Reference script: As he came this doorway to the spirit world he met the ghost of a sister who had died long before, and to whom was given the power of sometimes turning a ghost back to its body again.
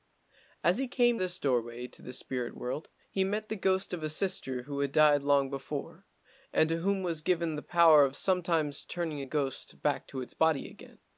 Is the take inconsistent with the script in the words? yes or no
no